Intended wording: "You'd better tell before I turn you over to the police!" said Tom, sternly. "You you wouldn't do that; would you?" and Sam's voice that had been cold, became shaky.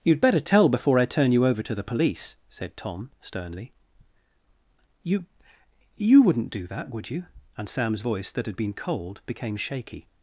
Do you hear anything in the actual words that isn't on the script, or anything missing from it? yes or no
no